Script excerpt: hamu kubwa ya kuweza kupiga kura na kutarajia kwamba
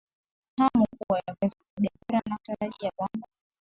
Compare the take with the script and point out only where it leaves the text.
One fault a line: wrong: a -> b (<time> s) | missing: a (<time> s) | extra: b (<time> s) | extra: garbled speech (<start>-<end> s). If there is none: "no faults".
no faults